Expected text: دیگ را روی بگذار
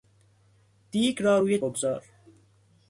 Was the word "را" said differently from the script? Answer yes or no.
no